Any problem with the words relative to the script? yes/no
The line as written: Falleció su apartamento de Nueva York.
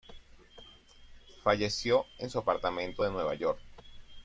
yes